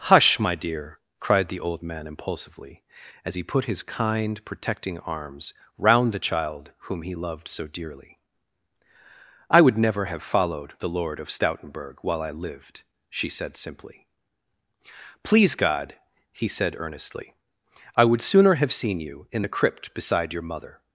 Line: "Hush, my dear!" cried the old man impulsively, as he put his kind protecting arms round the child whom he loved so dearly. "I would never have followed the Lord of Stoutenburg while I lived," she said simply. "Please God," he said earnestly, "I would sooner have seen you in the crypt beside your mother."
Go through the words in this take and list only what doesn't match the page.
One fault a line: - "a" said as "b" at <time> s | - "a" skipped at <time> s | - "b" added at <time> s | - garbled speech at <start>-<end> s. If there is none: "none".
none